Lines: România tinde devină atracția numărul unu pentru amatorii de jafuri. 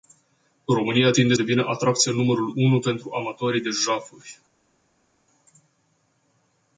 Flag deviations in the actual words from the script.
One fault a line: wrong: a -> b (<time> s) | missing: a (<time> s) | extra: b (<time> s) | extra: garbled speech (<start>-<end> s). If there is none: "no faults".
no faults